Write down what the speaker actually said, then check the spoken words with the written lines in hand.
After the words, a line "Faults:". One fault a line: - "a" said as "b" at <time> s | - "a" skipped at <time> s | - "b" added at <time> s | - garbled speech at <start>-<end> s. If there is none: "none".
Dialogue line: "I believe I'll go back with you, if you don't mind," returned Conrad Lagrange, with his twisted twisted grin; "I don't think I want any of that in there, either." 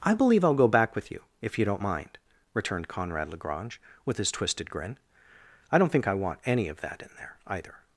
"I believe I'll go back with you, if you don't mind," returned Conrad Lagrange, with his twisted grin; "I don't think I want any of that in there, either."
Faults:
- "twisted" skipped at 4.7 s